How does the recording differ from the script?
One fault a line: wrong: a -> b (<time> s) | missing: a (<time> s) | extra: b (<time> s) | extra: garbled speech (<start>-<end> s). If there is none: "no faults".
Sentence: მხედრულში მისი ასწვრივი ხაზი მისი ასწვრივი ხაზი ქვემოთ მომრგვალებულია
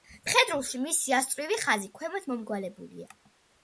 missing: მისი ასწვრივი ხაზი (1.9 s)